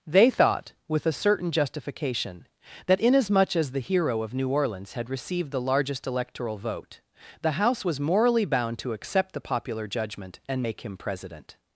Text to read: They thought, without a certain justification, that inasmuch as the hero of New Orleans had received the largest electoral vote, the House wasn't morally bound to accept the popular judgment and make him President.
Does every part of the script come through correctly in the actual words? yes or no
no